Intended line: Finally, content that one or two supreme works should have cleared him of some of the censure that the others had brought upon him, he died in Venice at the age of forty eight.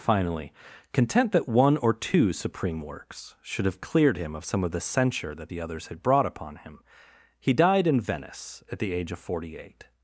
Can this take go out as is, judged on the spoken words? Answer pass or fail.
pass